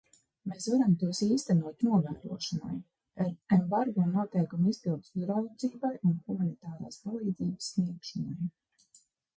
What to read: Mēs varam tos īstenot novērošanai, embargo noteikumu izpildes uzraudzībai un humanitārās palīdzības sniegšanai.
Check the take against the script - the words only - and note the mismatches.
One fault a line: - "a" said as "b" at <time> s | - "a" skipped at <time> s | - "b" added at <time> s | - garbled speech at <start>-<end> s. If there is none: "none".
none